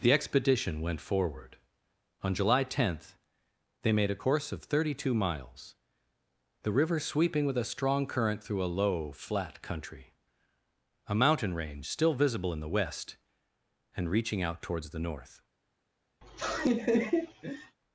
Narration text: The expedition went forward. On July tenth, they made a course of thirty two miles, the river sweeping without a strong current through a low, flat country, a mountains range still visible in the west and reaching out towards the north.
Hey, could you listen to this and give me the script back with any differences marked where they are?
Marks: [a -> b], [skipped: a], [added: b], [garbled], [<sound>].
The expedition went forward. On July tenth, they made a course of thirty two miles, the river sweeping [without -> with] a strong current through a low, flat country, a [mountains -> mountain] range still visible in the west and reaching out towards the north. [laugh]